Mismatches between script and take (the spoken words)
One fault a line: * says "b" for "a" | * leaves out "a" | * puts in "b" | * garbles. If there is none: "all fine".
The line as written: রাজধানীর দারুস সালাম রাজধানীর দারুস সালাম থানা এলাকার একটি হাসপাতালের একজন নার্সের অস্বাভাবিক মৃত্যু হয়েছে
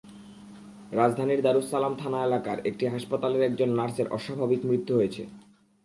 * leaves out "রাজধানীর দারুস সালাম"